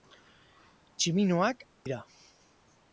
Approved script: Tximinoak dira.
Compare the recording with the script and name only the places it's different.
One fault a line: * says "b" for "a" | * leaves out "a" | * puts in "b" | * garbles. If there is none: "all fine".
all fine